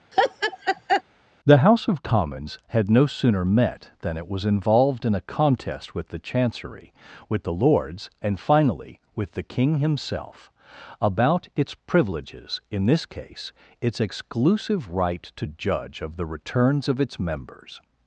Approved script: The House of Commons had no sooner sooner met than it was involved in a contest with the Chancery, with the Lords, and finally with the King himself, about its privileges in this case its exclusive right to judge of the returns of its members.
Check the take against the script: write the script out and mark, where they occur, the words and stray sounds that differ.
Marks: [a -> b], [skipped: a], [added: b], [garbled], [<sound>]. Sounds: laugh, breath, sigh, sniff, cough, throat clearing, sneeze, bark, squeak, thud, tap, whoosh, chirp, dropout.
[laugh] The House of Commons had no sooner [skipped: sooner] met than it was involved in a contest with the Chancery, with the Lords, and finally with the King himself, about its privileges in this case its exclusive right to judge of the returns of its members.